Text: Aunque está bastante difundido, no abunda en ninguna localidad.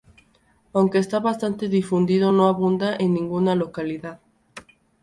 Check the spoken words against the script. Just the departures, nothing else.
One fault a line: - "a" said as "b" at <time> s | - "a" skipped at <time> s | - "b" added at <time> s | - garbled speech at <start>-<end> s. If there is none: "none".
none